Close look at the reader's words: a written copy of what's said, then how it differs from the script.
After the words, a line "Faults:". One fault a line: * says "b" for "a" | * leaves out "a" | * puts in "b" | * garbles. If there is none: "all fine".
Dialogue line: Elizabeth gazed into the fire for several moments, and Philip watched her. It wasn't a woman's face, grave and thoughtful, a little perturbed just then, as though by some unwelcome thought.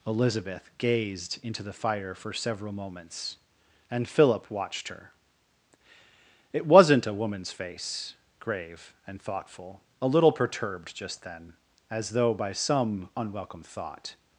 Elizabeth gazed into the fire for several moments, and Philip watched her. It wasn't a woman's face, grave and thoughtful, a little perturbed just then, as though by some unwelcome thought.
Faults:
all fine